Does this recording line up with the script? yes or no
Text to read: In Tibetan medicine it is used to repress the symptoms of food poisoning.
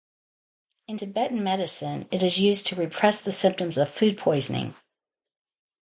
yes